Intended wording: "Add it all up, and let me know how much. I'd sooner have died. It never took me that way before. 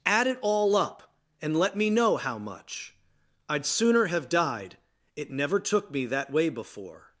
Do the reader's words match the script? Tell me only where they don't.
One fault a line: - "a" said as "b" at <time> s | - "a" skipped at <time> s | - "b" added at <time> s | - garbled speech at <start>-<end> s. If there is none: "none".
none